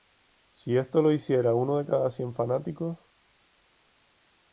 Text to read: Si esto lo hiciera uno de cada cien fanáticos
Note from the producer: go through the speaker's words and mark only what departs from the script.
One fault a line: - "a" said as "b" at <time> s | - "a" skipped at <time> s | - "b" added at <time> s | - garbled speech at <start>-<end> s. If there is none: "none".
none